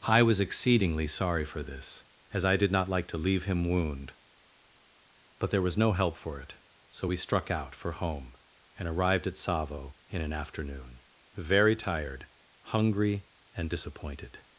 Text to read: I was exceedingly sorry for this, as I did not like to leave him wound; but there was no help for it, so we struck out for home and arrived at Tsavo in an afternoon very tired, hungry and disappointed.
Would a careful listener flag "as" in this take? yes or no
no